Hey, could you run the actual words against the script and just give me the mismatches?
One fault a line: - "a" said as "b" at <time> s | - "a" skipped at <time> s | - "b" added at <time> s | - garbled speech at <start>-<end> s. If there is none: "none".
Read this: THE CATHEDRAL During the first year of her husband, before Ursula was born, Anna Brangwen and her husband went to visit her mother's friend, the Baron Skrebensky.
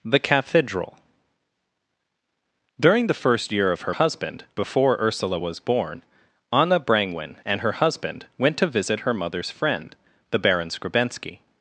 none